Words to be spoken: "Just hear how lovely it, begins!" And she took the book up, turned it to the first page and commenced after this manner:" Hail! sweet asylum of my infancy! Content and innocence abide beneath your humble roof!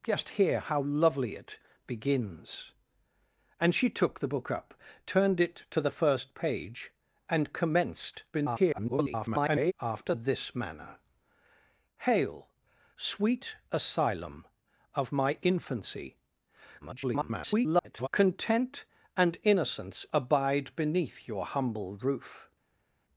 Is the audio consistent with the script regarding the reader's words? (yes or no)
no